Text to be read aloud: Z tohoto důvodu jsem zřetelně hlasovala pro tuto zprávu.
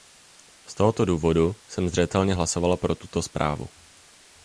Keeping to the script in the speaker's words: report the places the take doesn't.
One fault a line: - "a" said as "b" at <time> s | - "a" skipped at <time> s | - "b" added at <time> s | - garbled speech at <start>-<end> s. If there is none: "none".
none